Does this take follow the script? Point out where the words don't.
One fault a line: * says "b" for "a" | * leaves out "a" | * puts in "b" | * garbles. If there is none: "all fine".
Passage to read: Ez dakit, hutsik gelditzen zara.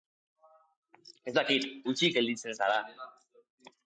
all fine